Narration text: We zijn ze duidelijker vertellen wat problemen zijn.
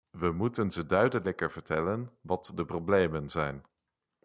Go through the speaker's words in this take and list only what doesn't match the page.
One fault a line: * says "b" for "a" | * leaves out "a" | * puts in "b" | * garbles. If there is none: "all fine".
* says "moeten" for "zijn"
* puts in "de"